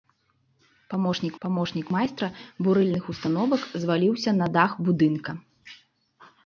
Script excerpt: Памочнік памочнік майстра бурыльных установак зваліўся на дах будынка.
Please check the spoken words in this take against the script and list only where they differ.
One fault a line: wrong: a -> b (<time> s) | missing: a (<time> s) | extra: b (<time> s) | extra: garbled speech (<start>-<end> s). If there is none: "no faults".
no faults